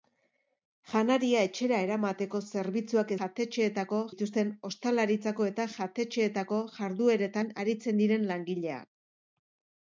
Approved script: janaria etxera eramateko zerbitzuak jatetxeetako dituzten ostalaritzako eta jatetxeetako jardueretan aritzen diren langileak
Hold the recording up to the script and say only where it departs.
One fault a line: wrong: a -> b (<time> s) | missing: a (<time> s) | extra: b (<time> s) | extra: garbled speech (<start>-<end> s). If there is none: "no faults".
no faults